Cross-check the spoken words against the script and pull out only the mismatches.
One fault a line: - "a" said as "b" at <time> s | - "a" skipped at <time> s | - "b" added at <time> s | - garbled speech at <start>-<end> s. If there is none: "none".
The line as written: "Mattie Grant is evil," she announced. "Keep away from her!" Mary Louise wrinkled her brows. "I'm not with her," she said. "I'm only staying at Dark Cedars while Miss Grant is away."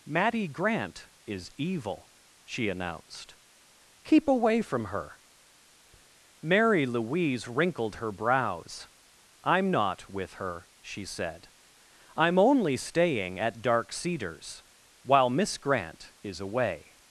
none